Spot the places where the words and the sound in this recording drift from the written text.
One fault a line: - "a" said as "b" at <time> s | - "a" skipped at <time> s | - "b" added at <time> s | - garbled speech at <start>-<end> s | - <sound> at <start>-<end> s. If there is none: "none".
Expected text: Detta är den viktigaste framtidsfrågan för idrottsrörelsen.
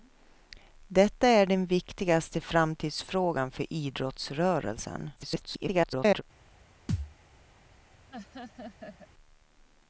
- garbled speech at 5.2-6.2 s
- thud at 6.9-7.1 s
- laugh at 8.1-9.1 s